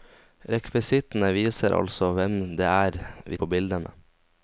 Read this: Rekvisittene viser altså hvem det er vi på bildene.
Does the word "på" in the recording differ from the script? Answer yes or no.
no